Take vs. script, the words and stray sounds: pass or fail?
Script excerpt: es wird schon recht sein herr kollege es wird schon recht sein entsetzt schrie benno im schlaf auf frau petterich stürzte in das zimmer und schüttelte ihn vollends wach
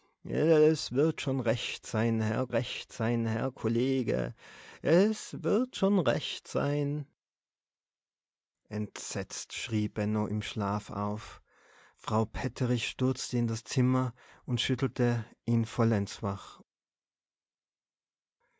fail